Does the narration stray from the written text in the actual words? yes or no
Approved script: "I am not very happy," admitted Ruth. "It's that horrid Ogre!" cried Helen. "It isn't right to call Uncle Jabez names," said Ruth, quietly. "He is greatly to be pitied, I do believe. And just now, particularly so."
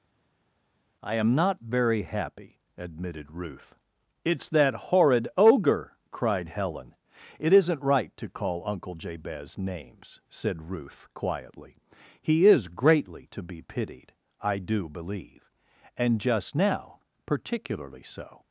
no